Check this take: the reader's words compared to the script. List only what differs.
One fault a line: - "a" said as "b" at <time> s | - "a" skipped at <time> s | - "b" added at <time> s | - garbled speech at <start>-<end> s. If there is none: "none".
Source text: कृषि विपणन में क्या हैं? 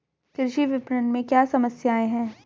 - "समस्याएँ" added at 1.4 s